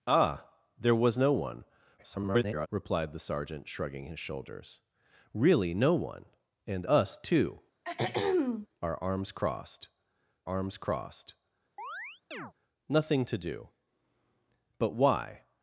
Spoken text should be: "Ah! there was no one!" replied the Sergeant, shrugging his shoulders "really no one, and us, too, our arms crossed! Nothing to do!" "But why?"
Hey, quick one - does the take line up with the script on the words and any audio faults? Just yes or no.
no